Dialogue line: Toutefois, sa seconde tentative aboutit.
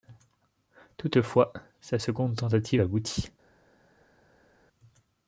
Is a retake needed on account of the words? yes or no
no